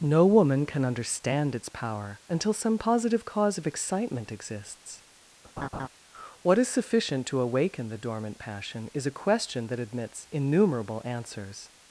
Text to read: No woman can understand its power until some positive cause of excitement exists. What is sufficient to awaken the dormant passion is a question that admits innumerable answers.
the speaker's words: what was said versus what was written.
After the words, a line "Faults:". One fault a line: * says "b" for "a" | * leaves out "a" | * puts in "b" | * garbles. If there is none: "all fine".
No woman can understand its power until some positive cause of excitement exists. What is sufficient to awaken the dormant passion is a question that admits innumerable answers.
Faults:
all fine